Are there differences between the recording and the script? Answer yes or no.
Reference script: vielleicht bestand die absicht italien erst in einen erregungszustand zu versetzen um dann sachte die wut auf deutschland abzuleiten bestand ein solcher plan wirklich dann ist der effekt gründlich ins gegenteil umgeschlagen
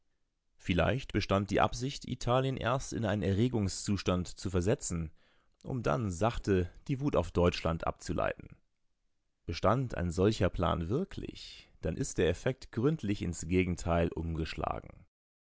no